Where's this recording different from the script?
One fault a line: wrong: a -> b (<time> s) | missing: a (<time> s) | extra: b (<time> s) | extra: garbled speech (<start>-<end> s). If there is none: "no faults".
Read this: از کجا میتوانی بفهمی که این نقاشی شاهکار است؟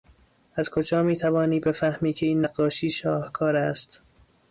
no faults